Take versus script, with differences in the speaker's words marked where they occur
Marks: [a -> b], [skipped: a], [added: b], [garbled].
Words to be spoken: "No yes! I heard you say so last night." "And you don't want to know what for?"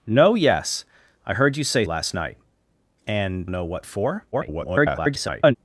"No yes! I heard you say [skipped: so] last night." "And [skipped: you don't want] to know what for?" [garbled]